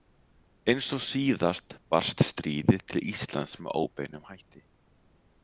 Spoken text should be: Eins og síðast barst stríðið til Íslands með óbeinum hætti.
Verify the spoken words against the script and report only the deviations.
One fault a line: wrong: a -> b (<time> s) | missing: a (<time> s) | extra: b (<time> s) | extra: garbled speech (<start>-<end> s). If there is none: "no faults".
no faults